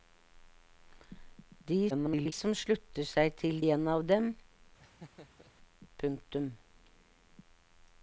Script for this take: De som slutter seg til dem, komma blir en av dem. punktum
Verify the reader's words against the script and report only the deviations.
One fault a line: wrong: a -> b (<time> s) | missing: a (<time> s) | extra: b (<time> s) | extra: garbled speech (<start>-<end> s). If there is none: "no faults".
extra: garbled speech (1.9-2.3 s)
missing: dem komma blir (3.6 s)